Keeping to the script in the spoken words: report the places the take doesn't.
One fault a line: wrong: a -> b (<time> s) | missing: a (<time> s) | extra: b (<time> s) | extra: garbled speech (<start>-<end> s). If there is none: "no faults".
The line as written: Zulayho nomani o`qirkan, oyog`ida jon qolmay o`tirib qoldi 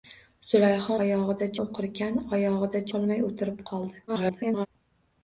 wrong: nomani -> oyog`ida (1.0 s)
missing: jon (2.8 s)
extra: garbled speech (4.1-4.7 s)